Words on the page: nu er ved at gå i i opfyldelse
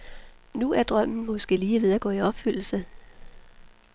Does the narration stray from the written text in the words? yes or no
yes